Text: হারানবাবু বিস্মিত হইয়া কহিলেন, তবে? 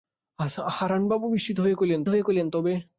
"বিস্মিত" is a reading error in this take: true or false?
false